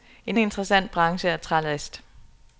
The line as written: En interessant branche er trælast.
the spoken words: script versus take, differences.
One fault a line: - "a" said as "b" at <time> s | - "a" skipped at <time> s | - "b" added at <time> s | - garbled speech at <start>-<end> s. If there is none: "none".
none